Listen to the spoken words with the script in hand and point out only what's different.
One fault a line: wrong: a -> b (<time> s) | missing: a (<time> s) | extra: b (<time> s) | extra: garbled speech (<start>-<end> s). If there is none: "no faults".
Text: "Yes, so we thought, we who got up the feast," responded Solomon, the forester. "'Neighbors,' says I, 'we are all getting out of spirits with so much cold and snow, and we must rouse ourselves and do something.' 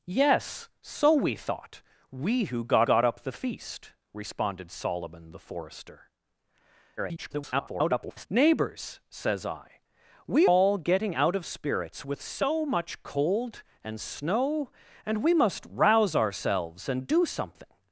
extra: got (2.8 s)
extra: garbled speech (7.0-8.3 s)
missing: are (10.5 s)